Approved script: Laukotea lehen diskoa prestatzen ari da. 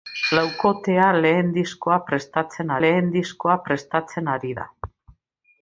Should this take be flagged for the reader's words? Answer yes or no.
yes